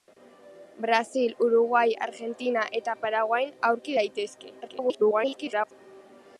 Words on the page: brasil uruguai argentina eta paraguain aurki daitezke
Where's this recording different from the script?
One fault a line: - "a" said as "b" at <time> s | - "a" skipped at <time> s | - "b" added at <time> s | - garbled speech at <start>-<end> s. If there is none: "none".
- garbled speech at 4.6-5.7 s